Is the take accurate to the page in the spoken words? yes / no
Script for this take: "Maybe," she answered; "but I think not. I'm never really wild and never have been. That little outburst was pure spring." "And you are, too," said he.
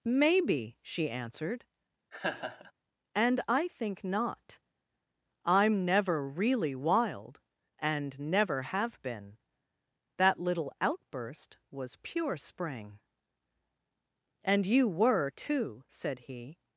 no